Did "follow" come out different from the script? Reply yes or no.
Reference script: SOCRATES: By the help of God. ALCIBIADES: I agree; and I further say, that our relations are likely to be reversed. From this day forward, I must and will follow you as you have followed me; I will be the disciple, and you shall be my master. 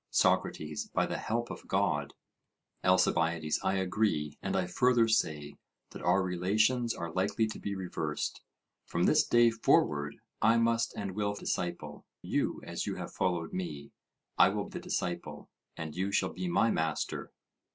yes